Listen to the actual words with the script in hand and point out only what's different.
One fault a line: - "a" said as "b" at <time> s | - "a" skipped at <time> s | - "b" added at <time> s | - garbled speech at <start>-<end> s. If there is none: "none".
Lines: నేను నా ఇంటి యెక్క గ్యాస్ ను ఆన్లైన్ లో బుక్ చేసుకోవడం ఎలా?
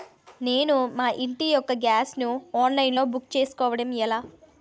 - "నా" said as "మా" at 0.9 s